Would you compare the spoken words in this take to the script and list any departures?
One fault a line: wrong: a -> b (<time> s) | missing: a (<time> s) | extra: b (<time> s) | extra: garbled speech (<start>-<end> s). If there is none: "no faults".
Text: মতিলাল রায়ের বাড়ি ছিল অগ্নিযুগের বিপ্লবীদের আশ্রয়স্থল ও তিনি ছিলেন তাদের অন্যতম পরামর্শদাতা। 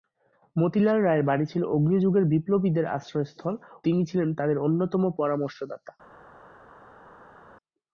missing: ও (3.5 s)